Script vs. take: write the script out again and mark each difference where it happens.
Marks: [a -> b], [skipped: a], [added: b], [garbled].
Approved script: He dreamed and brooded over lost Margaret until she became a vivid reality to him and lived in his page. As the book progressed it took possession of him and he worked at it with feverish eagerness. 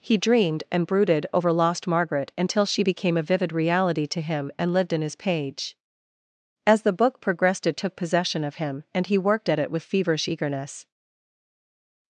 He dreamed and brooded over lost Margaret until she became a vivid reality to him and lived in his page. As the book progressed it took possession of him and he worked at it with feverish eagerness.